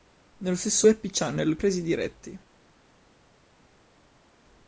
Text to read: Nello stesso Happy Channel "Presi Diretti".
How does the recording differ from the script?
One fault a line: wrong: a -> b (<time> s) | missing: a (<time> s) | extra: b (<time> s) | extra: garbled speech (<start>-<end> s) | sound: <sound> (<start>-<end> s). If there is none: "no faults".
no faults